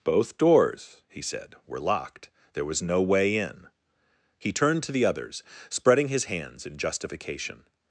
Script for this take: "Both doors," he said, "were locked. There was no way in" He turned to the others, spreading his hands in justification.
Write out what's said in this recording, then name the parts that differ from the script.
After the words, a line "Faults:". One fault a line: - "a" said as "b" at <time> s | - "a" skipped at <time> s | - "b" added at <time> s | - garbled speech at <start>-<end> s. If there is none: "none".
"Both doors," he said, "were locked. There was no way in" He turned to the others, spreading his hands in justification.
Faults:
none